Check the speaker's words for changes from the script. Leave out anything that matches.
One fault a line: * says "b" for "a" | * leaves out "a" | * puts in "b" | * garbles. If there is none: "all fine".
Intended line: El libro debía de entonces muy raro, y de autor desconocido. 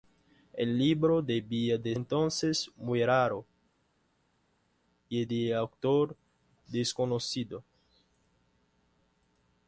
all fine